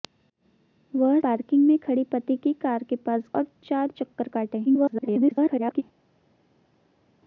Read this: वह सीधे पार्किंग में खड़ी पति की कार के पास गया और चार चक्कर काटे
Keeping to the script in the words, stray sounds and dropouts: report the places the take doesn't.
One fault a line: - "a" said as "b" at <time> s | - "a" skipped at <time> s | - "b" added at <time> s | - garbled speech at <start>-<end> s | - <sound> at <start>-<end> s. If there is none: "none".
- "सीधे" skipped at 1.2 s
- "गया" skipped at 3.3 s
- garbled speech at 4.6-5.8 s